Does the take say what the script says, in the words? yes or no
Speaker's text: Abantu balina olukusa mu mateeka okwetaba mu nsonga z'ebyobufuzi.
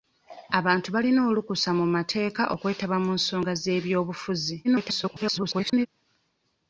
no